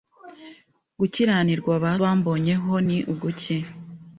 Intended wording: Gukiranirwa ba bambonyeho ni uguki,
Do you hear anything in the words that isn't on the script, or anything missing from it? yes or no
no